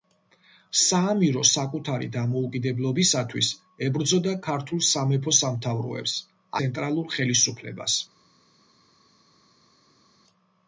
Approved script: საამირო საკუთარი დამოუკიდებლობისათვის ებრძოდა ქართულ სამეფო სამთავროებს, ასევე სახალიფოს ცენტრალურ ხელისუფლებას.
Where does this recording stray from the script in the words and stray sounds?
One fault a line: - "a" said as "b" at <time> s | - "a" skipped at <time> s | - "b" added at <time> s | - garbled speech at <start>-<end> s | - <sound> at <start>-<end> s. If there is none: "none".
- "ასევე სახალიფოს" skipped at 6.2 s